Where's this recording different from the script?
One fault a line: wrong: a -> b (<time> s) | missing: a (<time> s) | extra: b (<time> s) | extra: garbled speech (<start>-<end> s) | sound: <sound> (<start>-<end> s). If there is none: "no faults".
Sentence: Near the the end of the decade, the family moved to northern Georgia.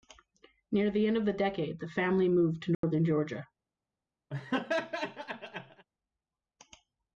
missing: the (1.1 s)
sound: dropout (2.7-2.8 s)
sound: laugh (4.3-5.9 s)